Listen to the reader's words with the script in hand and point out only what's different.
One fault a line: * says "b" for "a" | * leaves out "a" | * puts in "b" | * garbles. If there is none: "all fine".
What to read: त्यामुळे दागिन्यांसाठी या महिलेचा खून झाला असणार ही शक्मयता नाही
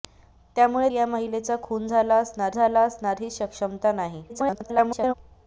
* leaves out "दागिन्यांसाठी"
* puts in "झाला असणार"
* garbles